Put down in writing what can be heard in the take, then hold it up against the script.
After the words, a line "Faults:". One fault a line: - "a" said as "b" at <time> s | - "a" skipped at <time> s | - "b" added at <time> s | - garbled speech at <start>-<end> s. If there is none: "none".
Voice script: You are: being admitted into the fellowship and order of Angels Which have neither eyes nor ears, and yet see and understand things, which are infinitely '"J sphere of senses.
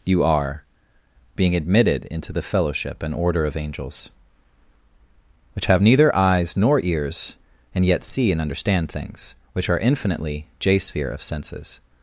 You are: being admitted into the fellowship and order of Angels Which have neither eyes nor ears, and yet see and understand things, which are infinitely '"J sphere of senses.
Faults:
none